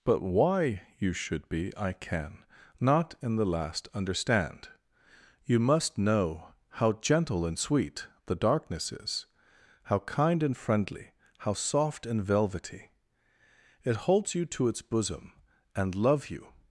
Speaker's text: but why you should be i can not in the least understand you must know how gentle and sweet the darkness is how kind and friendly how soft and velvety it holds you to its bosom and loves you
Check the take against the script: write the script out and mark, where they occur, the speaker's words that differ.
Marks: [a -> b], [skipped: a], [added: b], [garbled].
but why you should be i can not in the [least -> last] understand you must know how gentle and sweet the darkness is how kind and friendly how soft and velvety it holds you to its bosom and [loves -> love] you